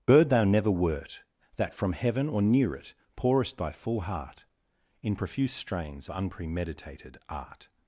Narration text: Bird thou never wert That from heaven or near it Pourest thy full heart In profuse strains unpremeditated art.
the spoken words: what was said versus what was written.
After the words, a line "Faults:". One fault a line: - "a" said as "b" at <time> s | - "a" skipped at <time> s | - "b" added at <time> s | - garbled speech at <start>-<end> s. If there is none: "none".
Bird thou never wert That from heaven or near it Pourest thy full heart In profuse strains unpremeditated art.
Faults:
none